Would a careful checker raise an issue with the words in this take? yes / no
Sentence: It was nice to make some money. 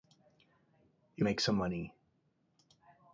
yes